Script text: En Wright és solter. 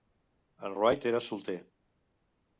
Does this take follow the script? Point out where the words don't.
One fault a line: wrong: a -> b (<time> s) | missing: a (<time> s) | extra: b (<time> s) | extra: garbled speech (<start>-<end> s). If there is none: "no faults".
wrong: és -> era (1.1 s)